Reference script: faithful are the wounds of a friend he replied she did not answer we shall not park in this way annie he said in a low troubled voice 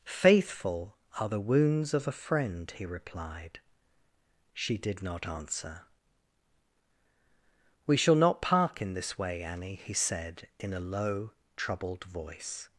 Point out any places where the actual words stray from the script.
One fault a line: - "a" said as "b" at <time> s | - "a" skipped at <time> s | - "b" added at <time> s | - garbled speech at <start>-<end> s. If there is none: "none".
none